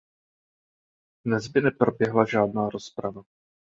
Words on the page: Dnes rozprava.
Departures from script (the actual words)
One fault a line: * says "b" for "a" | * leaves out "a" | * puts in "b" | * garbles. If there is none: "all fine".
* puts in "by neproběhla žádná"